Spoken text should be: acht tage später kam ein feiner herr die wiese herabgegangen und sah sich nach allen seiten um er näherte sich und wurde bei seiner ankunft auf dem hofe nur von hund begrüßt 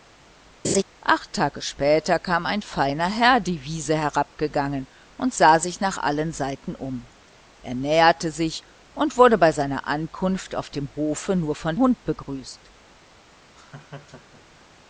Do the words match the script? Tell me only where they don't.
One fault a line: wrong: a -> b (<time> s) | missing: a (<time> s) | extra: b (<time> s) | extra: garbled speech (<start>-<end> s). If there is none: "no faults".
no faults